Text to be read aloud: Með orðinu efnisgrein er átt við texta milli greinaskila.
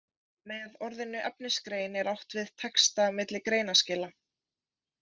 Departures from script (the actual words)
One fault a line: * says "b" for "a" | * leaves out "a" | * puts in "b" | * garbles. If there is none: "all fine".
all fine